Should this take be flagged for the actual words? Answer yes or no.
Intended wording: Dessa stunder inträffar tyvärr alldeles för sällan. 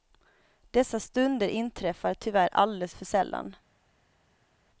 no